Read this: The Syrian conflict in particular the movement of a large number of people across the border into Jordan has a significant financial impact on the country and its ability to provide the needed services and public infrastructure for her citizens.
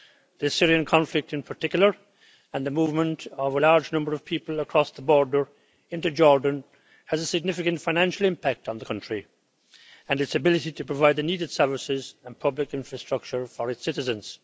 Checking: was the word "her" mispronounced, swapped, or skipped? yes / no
yes